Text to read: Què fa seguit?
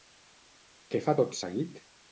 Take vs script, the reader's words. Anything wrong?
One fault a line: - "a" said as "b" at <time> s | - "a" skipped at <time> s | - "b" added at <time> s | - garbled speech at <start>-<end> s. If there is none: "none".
- "tot" added at 1.2 s